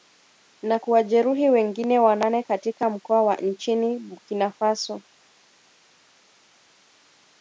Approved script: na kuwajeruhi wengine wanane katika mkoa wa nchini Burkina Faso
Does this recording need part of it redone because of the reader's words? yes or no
no